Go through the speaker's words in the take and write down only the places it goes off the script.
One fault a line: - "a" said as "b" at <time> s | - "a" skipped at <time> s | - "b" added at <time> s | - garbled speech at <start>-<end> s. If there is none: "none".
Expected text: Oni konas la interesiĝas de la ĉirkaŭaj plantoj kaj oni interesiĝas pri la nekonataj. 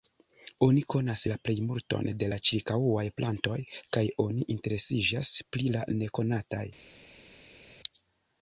- "interesiĝas" said as "plejmulton" at 1.5 s